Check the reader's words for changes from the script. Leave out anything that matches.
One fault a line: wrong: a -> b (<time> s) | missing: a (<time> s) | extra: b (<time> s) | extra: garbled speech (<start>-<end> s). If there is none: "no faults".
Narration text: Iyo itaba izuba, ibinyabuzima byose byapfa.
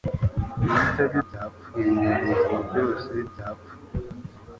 wrong: izuba -> byapfa (1.2 s)